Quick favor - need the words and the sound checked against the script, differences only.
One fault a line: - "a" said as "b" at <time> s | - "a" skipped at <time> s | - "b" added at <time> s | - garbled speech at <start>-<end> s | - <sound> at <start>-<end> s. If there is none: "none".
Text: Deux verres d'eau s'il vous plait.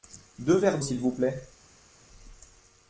- "d'eau" skipped at 0.8 s